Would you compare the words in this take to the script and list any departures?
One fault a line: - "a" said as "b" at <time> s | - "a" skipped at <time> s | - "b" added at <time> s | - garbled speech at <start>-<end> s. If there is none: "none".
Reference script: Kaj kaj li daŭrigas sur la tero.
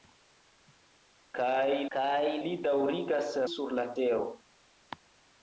none